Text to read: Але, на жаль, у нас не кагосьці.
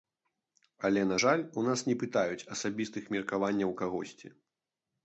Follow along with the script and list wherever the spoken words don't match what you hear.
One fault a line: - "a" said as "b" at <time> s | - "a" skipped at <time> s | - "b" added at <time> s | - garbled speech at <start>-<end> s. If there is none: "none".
- "пытаюць асабістых меркаванняў" added at 2.0 s